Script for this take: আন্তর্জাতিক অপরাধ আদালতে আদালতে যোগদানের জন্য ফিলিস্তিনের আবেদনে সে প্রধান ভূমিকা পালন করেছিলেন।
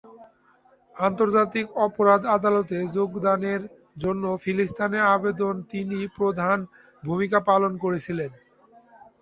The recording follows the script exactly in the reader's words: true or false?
false